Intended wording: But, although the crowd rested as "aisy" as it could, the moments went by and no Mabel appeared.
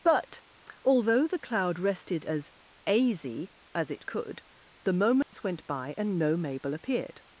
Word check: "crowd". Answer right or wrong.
wrong